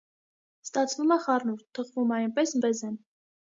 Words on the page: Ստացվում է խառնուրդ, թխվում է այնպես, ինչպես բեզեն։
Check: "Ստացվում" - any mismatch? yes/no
no